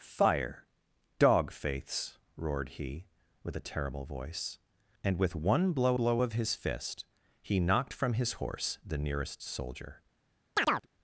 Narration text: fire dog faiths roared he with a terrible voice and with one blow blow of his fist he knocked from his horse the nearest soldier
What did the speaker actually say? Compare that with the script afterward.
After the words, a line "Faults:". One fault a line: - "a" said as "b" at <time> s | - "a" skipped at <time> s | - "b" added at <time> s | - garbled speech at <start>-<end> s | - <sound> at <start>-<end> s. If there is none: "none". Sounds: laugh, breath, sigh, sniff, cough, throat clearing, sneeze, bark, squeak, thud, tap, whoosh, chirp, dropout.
fire dog faiths roared he with a terrible voice and with one blow blow of his fist he knocked from his horse the nearest soldier
Faults:
- chirp at 10.6-10.9 s